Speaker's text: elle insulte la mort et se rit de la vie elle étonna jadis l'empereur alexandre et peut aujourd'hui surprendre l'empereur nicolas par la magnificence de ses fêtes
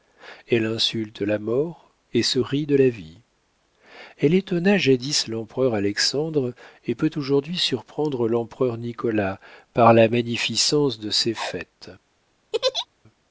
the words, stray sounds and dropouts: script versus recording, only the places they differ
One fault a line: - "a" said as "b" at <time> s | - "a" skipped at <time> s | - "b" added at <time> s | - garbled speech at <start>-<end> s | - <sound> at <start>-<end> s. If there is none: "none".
- laugh at 12.5-12.9 s